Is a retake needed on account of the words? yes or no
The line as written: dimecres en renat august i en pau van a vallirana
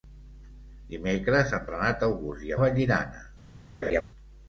yes